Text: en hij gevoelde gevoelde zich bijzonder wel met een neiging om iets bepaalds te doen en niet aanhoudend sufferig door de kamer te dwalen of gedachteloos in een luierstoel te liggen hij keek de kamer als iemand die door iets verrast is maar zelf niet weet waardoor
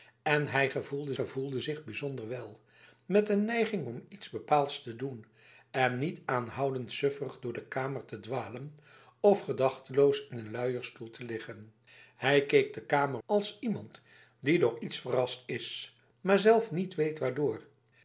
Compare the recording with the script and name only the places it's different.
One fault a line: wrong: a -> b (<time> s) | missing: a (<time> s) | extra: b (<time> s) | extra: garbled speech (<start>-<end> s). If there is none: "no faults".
no faults